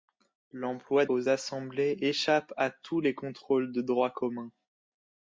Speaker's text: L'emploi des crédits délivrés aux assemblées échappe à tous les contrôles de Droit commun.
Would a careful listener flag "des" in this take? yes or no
yes